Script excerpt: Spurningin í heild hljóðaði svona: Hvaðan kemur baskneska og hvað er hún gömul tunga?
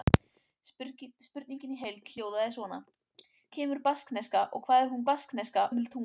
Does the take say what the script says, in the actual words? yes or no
no